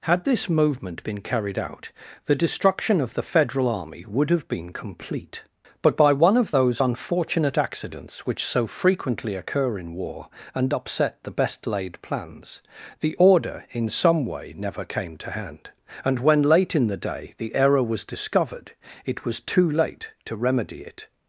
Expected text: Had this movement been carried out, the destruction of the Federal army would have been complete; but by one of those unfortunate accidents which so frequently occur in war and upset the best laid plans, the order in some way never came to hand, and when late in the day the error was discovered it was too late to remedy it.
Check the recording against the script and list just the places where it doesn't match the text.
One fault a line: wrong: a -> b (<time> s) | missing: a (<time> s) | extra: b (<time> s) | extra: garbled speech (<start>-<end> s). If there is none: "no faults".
no faults